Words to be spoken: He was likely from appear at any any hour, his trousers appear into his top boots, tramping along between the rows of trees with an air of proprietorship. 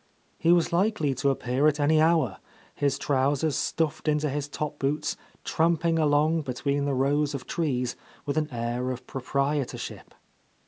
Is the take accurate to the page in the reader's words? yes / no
no